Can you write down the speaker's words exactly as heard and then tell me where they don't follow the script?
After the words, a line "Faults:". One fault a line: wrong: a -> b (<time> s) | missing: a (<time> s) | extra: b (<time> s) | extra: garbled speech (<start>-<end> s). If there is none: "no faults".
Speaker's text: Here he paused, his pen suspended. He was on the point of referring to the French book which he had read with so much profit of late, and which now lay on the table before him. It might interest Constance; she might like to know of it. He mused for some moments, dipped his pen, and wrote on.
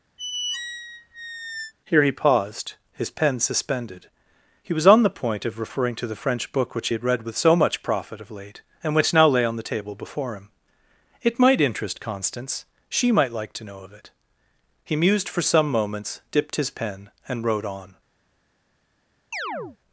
Here he paused, his pen suspended. He was on the point of referring to the French book which he had read with so much profit of late, and which now lay on the table before him. It might interest Constance; she might like to know of it. He mused for some moments, dipped his pen, and wrote on.
Faults:
no faults